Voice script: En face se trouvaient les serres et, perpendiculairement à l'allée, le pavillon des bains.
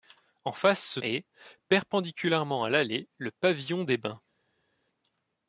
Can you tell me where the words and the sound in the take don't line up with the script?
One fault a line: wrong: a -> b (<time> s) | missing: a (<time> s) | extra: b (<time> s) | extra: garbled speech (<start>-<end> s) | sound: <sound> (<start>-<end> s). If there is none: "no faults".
missing: trouvaient les serres (1.0 s)